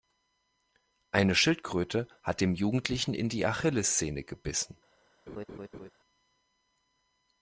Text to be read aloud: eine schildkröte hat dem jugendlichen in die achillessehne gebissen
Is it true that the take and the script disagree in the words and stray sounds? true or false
true